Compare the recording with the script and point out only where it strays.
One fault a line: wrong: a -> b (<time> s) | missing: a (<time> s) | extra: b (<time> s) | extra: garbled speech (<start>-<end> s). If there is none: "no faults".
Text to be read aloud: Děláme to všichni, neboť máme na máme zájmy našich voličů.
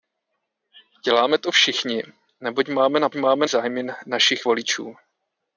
no faults